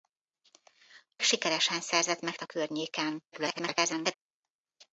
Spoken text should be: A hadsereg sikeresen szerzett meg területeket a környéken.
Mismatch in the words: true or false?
true